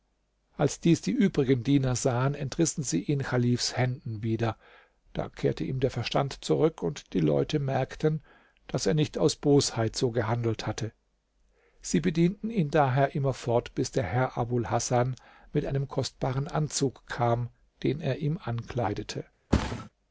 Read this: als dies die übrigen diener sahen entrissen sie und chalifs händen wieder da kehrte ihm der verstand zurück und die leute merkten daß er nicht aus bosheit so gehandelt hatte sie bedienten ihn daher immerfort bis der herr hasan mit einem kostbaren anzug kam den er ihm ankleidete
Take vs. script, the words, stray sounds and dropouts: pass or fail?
fail